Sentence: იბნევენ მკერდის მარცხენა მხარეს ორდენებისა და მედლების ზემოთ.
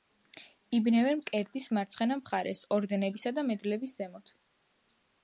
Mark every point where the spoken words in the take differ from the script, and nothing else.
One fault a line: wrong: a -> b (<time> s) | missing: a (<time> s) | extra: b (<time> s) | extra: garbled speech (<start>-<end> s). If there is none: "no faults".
no faults